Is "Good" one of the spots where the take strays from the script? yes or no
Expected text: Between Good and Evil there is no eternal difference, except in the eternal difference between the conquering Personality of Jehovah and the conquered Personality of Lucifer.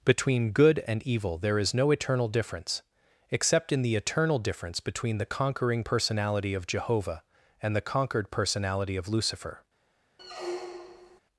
no